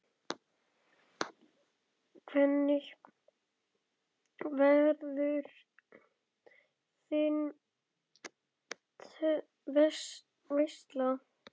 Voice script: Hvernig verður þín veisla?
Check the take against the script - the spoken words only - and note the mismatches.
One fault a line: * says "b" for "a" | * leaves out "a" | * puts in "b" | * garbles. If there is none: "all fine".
all fine